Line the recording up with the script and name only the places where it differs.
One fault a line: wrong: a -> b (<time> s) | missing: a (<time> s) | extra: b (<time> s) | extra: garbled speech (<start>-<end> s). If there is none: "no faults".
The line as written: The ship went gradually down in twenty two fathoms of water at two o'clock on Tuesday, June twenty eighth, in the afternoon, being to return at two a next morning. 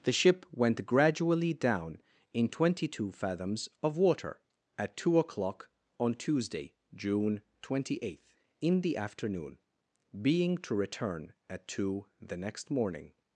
wrong: a -> the (12.2 s)